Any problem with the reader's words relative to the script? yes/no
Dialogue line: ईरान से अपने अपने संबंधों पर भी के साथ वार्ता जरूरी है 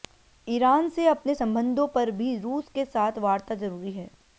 yes